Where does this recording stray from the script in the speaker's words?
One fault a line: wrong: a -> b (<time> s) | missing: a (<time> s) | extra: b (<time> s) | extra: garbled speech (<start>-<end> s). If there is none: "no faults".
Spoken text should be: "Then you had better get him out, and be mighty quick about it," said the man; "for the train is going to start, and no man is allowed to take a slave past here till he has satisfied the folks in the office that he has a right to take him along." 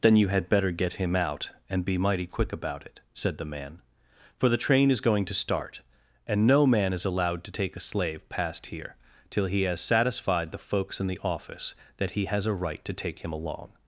no faults